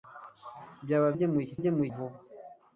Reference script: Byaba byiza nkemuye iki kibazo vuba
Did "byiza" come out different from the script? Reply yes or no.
yes